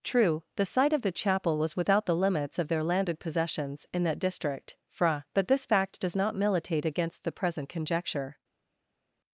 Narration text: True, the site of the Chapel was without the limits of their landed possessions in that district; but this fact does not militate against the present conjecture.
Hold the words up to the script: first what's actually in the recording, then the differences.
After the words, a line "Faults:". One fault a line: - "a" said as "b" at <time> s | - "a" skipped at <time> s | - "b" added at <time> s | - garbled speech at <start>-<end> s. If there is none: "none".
True, the site of the Chapel was without the limits of their landed possessions in that district; fra but this fact does not militate against the present conjecture.
Faults:
- "fra" added at 4.9 s